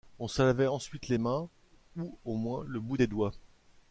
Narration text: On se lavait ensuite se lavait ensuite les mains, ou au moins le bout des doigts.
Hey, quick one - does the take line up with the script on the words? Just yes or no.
no